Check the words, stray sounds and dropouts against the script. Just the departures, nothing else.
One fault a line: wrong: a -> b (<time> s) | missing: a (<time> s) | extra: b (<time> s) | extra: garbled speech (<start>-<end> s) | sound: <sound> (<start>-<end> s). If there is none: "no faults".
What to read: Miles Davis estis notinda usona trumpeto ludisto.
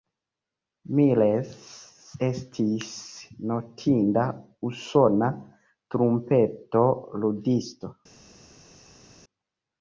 missing: Davis (1.5 s)